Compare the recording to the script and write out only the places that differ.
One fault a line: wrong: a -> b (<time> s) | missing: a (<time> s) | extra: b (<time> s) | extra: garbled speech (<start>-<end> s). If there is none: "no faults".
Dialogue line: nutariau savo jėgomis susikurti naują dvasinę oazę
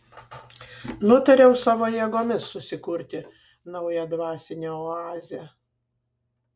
no faults